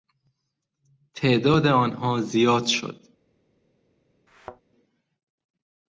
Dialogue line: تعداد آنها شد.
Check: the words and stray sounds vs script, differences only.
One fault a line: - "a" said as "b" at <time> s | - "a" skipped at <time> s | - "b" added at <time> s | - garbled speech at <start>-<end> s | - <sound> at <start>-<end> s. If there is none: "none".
- "زیاد" added at 2.2 s
- thud at 4.3-4.6 s